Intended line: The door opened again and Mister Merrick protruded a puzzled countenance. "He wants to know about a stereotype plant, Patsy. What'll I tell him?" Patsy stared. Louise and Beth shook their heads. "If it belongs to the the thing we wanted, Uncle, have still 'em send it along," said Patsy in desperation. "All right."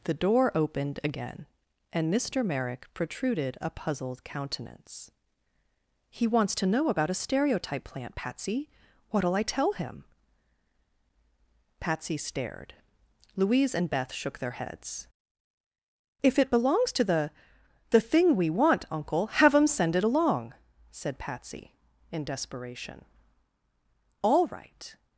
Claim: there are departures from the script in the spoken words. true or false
true